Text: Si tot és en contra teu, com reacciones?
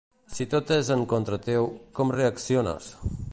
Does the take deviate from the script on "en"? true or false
false